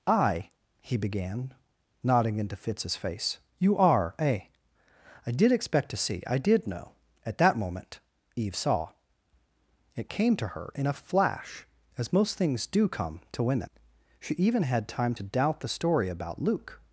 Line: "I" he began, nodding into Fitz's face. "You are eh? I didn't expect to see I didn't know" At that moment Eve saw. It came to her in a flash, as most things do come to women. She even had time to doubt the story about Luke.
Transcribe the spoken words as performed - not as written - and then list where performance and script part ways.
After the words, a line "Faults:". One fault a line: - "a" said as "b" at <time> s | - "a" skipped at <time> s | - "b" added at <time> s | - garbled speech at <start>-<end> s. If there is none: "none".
"I" he began, nodding into Fitz's face. "You are eh? I did expect to see I did know" At that moment Eve saw. It came to her in a flash, as most things do come to women. She even had time to doubt the story about Luke.
Faults:
- "didn't" said as "did" at 5.3 s
- "didn't" said as "did" at 6.4 s